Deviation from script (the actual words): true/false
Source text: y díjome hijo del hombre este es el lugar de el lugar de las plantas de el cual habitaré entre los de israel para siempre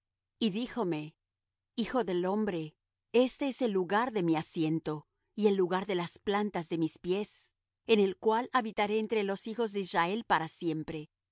true